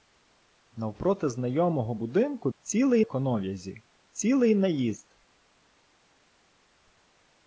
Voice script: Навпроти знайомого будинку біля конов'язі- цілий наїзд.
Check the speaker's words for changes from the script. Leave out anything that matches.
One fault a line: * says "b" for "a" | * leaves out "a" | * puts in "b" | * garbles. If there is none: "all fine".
* says "цілий" for "біля"